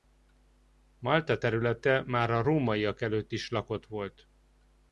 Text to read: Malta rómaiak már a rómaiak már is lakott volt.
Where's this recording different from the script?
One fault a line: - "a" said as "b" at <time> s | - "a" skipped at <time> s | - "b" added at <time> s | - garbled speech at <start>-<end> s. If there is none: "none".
- "rómaiak" said as "területe" at 1.4 s
- "már" said as "előtt" at 3.0 s